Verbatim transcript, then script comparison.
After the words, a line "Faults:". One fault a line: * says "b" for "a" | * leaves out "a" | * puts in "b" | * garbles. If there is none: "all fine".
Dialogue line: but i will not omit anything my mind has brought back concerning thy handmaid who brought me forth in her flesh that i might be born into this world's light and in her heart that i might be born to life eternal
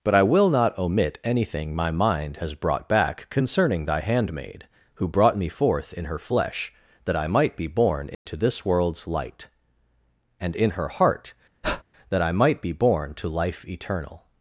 but i will not omit anything my mind has brought back concerning thy handmaid who brought me forth in her flesh that i might be born into this world's light and in her heart that i might be born to life eternal
Faults:
all fine